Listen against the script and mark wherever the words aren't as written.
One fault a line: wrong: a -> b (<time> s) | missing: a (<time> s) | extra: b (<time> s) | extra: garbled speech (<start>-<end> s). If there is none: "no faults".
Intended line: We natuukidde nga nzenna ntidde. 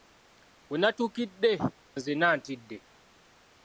missing: nga (1.5 s)